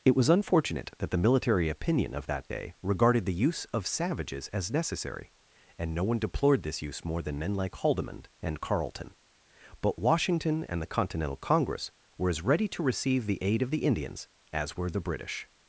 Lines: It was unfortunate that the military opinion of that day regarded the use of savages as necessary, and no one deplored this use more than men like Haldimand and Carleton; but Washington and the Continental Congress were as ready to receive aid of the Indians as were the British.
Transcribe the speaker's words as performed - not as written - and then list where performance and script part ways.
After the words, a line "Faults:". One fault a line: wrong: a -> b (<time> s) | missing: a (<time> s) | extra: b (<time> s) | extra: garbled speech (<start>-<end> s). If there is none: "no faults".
It was unfortunate that the military opinion of that day regarded the use of savages as necessary, and no one deplored this use more than men like Haldimand and Carleton; but Washington and the Continental Congress were as ready to receive the aid of the Indians as were the British.
Faults:
extra: the (13.3 s)